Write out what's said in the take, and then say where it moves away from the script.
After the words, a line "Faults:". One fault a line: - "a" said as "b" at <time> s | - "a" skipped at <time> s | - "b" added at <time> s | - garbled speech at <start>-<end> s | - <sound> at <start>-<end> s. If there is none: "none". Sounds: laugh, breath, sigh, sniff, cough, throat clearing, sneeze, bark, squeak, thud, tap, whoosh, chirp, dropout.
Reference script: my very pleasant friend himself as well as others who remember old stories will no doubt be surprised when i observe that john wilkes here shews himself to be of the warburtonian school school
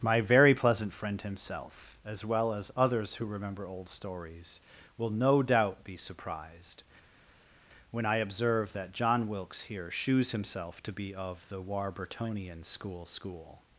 my very pleasant friend himself as well as others who remember old stories will no doubt be surprised when i observe that john wilkes here shews himself to be of the warburtonian school school
Faults:
none